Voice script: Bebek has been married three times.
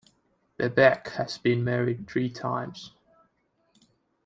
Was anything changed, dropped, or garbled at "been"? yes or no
no